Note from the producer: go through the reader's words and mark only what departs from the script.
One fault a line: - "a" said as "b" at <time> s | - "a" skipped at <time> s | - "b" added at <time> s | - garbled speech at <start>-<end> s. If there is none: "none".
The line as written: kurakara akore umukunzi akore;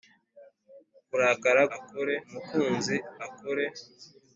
none